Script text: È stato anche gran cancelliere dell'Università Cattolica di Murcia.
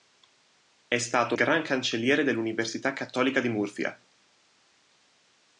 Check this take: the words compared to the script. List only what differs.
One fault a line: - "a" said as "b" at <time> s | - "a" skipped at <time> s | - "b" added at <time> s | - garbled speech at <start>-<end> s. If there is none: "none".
- "anche" skipped at 1.4 s